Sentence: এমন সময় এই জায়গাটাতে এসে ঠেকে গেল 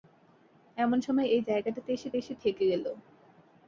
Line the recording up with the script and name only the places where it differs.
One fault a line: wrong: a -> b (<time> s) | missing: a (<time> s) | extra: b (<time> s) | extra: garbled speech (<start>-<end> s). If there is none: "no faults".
extra: এসে (2.2 s)